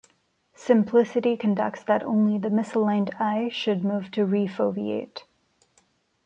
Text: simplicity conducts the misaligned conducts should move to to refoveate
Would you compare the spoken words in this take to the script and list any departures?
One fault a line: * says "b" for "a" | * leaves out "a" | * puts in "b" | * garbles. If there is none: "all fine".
* puts in "that only"
* says "eye" for "conducts"
* leaves out "to"